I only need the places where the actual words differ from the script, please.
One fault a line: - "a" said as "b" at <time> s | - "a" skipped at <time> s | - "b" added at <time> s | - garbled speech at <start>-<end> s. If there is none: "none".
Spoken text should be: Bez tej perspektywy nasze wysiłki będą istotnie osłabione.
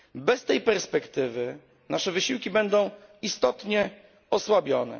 none